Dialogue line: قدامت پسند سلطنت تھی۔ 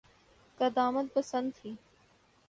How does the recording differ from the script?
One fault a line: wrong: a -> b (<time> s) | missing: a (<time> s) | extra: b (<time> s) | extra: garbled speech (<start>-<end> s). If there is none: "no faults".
missing: سلطنت (1.5 s)